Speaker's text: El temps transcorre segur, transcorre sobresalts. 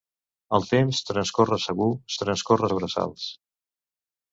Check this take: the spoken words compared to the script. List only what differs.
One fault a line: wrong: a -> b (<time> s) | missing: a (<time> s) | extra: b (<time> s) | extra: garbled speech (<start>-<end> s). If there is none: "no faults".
no faults